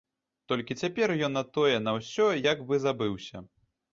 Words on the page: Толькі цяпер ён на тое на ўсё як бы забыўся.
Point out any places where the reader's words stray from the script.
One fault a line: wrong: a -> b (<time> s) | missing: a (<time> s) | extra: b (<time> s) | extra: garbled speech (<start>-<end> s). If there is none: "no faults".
no faults